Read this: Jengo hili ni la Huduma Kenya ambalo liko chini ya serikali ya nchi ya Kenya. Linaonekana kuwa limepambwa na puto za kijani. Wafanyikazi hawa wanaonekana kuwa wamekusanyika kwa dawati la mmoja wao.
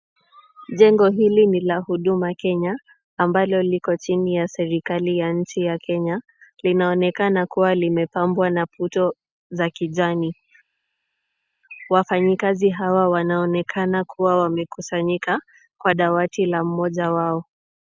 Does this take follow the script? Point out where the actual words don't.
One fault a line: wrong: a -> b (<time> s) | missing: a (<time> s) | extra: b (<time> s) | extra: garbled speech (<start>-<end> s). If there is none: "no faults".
no faults